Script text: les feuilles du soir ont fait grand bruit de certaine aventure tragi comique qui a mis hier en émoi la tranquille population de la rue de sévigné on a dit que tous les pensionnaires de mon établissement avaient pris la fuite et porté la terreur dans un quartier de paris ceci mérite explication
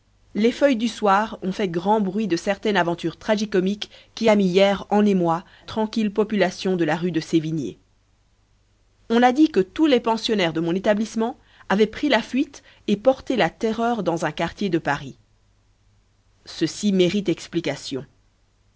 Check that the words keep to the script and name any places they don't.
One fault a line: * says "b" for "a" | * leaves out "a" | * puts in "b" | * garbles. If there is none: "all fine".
* leaves out "la"